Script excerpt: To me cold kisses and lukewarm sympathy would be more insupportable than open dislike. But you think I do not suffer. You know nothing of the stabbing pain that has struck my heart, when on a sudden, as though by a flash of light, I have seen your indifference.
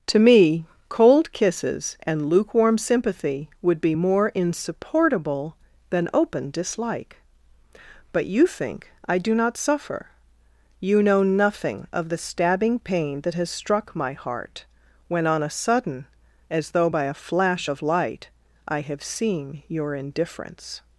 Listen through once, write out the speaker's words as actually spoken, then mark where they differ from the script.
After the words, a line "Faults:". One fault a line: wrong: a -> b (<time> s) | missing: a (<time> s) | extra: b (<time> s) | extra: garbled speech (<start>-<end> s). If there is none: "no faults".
To me cold kisses and lukewarm sympathy would be more insupportable than open dislike. But you think I do not suffer. You know nothing of the stabbing pain that has struck my heart, when on a sudden, as though by a flash of light, I have seen your indifference.
Faults:
no faults